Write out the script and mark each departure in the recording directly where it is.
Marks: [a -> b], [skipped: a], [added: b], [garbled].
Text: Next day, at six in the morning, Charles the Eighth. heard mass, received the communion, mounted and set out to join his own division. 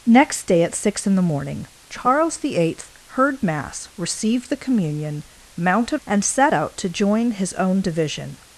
Next day, at six in the morning, Charles the Eighth. heard mass, received the communion, mounted and set out to join his own division.